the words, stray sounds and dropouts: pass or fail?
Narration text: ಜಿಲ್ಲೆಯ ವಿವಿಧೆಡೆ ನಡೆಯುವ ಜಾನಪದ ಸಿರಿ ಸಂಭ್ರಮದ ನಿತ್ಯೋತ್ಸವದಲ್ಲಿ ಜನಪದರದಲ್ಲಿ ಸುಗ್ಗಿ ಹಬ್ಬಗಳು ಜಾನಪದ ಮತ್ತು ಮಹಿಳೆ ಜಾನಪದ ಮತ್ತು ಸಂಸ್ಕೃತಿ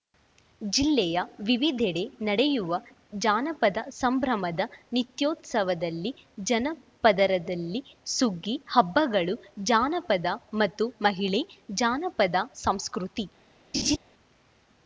fail